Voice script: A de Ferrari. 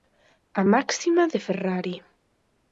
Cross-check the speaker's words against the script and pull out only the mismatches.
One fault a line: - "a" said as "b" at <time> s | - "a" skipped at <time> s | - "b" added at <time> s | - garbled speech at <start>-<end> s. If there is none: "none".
- "máxima" added at 0.7 s